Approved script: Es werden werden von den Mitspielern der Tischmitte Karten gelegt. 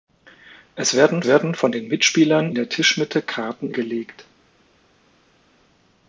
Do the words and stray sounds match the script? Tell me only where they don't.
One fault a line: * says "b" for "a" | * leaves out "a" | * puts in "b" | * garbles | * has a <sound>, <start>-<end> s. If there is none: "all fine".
all fine